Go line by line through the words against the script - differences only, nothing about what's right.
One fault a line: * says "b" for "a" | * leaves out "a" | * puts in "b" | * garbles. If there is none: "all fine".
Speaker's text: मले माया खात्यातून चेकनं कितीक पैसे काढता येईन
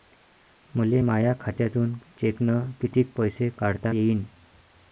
all fine